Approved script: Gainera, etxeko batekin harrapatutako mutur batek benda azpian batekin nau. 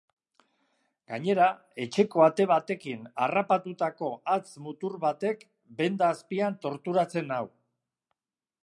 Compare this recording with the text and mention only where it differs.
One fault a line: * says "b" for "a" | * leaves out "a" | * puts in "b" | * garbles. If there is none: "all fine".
* puts in "ate"
* puts in "hatz"
* says "torturatzen" for "batekin"